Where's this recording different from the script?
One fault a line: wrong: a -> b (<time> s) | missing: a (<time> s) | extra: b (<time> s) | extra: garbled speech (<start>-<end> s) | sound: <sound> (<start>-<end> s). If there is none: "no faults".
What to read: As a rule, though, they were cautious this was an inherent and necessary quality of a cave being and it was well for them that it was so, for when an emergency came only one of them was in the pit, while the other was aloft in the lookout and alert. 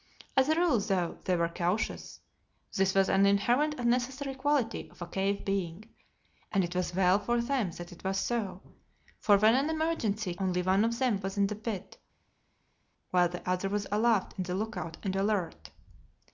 missing: came (10.3 s)